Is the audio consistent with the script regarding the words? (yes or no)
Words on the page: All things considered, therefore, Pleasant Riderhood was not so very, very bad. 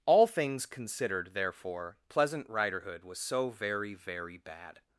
no